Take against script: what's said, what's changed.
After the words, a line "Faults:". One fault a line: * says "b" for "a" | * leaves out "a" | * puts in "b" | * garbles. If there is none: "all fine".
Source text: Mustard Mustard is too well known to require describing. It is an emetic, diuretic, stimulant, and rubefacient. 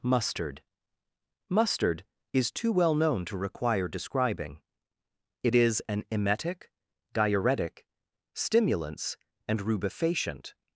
Mustard Mustard is too well known to require describing. It is an emetic, diuretic, stimulants, and rubefacient.
Faults:
* says "stimulants" for "stimulant"